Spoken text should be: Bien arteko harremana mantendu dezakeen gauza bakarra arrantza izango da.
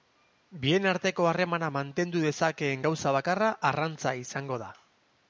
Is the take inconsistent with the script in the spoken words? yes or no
no